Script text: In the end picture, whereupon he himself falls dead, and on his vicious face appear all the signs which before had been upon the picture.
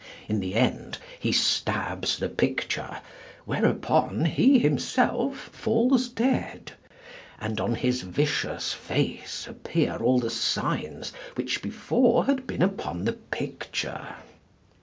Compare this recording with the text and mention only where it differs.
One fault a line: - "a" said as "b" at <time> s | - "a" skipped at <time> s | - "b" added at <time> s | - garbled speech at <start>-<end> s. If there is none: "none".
- "he stabs the" added at 1.2 s